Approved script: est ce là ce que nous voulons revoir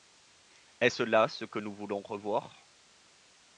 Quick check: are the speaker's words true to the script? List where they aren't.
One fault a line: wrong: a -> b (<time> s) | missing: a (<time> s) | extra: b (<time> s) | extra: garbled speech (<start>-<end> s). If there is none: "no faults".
no faults